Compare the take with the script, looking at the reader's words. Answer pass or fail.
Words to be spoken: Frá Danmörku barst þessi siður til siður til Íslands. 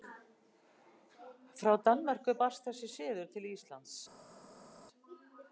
fail